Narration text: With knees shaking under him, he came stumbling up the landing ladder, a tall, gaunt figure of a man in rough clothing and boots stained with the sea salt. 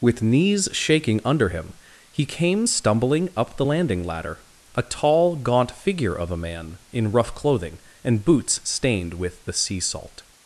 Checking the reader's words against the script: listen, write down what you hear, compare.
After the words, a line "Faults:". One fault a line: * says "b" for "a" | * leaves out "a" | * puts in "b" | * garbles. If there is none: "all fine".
With knees shaking under him, he came stumbling up the landing ladder, a tall, gaunt figure of a man in rough clothing and boots stained with the sea salt.
Faults:
all fine